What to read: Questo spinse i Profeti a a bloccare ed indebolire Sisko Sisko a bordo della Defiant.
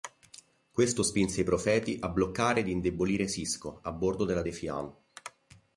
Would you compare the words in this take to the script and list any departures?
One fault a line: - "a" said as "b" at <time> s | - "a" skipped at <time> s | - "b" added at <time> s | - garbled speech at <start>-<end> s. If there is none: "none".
- "a" skipped at 2.1 s
- "Sisko" skipped at 3.8 s